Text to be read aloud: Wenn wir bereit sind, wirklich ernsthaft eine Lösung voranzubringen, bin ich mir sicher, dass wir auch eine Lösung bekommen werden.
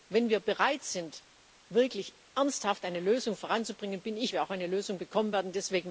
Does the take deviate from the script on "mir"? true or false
true